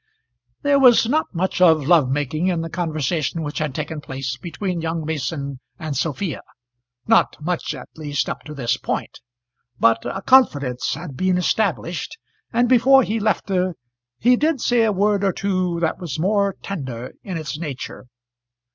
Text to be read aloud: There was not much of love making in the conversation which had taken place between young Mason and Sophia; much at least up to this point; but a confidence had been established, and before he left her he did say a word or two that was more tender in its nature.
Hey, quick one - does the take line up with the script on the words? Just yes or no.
no